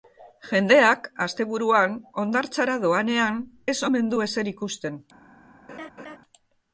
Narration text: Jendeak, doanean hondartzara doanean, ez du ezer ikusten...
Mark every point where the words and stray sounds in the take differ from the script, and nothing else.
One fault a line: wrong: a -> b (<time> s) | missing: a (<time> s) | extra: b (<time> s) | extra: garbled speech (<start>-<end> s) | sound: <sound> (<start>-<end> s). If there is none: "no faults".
wrong: doanean -> asteburuan (1.2 s)
extra: omen (3.9 s)
sound: laugh (5.7-6.2 s)